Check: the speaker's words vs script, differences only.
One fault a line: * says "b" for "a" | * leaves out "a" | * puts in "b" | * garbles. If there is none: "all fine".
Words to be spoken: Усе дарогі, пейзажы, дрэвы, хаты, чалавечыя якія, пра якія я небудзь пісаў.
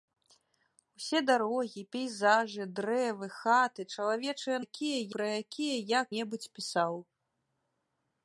all fine